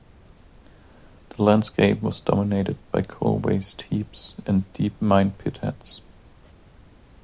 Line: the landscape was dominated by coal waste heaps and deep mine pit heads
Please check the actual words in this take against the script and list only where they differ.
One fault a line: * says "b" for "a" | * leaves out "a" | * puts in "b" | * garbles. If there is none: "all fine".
all fine